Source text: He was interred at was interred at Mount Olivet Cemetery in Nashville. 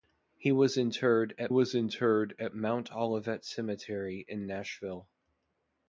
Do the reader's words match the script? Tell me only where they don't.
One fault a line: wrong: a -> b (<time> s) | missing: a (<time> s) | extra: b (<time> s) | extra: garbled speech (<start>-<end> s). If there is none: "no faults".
no faults